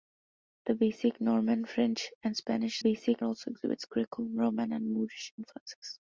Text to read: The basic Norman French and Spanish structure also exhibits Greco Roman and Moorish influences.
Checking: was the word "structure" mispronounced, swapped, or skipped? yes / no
yes